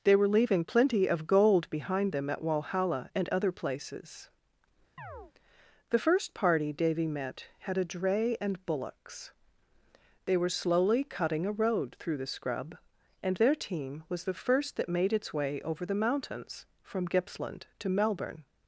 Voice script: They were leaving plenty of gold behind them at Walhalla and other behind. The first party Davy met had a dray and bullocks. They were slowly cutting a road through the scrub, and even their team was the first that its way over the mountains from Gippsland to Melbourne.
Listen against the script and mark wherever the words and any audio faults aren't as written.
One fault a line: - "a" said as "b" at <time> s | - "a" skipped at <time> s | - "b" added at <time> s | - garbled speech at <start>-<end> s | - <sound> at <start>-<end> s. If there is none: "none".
- "behind" said as "places" at 3.5 s
- chirp at 5.0-5.3 s
- "even" skipped at 13.4 s
- "made" added at 14.9 s